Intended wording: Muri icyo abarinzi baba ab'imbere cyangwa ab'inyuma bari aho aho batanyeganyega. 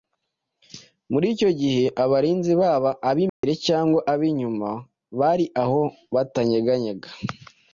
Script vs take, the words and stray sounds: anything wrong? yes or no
yes